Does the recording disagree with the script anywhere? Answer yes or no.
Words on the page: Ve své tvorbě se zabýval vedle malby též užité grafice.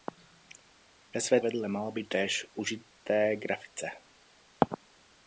yes